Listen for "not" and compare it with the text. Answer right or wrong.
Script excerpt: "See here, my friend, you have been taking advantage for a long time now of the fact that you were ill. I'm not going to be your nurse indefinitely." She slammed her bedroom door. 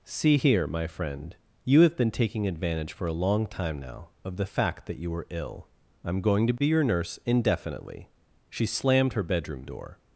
wrong